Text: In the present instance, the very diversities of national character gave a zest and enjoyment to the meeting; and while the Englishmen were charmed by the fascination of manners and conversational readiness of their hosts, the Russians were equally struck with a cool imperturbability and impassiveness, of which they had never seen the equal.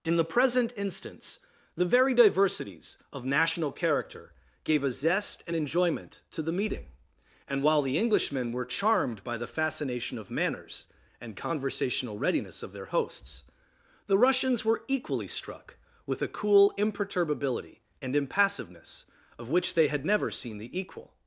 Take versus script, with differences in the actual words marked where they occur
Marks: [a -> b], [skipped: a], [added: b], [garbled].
In the present instance, the very diversities of national character gave a zest and enjoyment to the meeting; and while the Englishmen were charmed by the fascination of manners and conversational readiness of their hosts, the Russians were equally struck with a cool imperturbability and impassiveness, of which they had never seen the equal.